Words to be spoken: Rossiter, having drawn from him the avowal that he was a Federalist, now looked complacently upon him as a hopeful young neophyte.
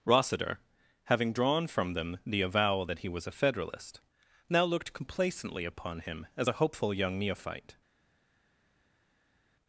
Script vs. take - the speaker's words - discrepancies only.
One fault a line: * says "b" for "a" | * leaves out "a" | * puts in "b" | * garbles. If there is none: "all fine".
* says "them" for "him"